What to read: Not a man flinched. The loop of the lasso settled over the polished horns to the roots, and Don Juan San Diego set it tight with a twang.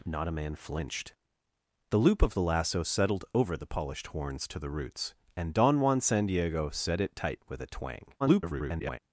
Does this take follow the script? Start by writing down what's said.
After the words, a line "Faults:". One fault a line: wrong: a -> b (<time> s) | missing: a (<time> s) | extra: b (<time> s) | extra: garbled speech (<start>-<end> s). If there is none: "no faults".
Not a man flinched. The loop of the lasso settled over the polished horns to the roots, and Don Juan San Diego set it tight with a twang. [garbled]
Faults:
extra: garbled speech (8.2-9.0 s)